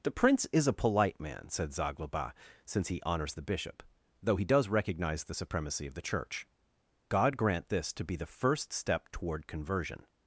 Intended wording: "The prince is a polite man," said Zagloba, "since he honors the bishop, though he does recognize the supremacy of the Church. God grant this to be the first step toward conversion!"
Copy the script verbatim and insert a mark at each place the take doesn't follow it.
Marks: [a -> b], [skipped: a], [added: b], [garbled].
"The prince is a polite man," said Zagloba, "since he honors the bishop, though he does recognize the supremacy of the Church. God grant this to be the first step toward conversion!"